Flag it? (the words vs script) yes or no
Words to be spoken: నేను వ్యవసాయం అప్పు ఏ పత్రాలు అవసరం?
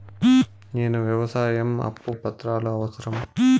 no